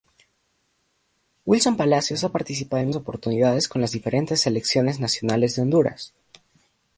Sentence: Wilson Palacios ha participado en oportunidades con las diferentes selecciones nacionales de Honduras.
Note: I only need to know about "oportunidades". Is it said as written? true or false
true